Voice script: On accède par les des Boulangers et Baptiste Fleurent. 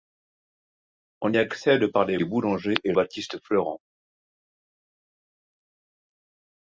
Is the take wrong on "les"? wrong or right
right